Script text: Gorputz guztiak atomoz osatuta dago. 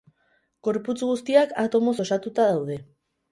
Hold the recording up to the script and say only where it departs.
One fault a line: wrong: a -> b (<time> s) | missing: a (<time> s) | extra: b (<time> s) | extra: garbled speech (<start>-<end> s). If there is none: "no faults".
wrong: dago -> daude (2.5 s)